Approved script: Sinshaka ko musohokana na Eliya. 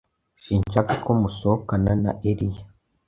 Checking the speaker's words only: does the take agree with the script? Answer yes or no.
yes